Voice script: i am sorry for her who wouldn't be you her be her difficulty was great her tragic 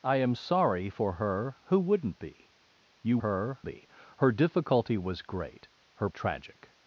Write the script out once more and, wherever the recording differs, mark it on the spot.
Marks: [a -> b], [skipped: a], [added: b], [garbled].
i am sorry for her who wouldn't be you her be her difficulty was great her tragic